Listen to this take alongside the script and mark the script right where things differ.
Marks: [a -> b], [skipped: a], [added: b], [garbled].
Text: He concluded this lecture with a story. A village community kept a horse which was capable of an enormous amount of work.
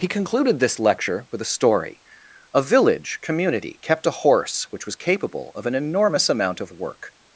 He concluded this lecture with a story. A village community kept a horse which was capable of an enormous amount of work.